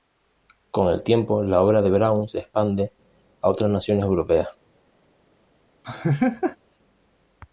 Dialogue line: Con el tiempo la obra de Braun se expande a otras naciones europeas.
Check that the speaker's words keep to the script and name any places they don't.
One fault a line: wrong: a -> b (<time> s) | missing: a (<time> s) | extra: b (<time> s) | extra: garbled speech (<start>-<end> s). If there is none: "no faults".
no faults